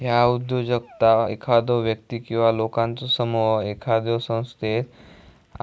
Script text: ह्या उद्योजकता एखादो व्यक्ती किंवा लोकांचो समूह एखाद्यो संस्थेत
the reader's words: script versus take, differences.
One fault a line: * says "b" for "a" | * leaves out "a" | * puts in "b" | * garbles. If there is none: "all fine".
all fine